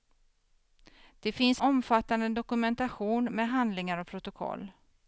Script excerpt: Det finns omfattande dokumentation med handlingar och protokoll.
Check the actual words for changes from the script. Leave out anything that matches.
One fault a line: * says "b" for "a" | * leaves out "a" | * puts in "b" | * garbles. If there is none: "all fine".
all fine